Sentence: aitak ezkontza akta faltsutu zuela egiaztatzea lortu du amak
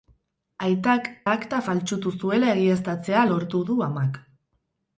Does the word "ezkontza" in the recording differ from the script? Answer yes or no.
yes